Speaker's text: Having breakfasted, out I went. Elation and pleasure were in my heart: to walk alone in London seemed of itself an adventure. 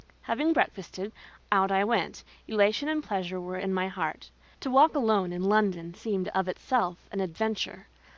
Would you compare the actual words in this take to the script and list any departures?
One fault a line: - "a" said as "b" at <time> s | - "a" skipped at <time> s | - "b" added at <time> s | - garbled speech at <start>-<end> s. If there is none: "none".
none